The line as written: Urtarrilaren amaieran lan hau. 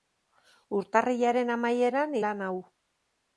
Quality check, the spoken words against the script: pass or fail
pass